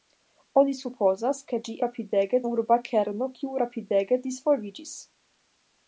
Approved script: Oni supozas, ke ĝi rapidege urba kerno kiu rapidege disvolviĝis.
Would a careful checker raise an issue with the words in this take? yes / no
no